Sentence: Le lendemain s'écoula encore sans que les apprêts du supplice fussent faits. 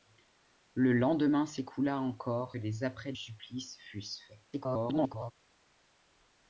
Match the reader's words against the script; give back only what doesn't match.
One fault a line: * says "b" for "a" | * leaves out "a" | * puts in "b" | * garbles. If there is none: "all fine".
* leaves out "sans que"
* leaves out "du"
* garbles